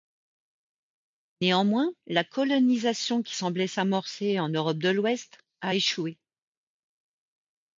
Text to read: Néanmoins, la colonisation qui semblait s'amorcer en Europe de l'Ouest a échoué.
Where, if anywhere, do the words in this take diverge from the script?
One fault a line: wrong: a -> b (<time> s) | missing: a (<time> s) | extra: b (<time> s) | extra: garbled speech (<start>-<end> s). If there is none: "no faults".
no faults